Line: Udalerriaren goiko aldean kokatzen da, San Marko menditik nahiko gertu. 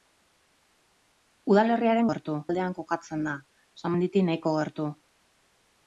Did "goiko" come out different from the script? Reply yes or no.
yes